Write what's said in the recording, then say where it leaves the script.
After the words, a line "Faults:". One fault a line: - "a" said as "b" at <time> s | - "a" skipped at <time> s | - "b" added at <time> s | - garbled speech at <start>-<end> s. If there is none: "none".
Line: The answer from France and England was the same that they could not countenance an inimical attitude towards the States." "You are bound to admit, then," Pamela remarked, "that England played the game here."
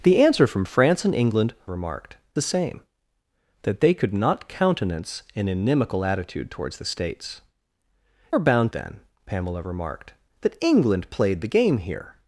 The answer from France and England remarked the same that they could not countenance an inimical attitude towards the States." "Are bound then," Pamela remarked, "that England played the game here."
Faults:
- "was" said as "remarked" at 1.6 s
- "You" skipped at 7.4 s
- "to admit" skipped at 8.7 s